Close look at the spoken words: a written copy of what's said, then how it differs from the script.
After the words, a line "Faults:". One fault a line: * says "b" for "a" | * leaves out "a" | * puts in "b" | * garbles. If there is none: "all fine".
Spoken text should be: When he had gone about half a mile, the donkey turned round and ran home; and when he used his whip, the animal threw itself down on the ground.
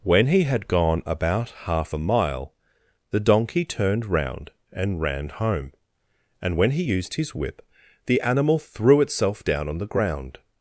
When he had gone about half a mile, the donkey turned round and ran home; and when he used his whip, the animal threw itself down on the ground.
Faults:
all fine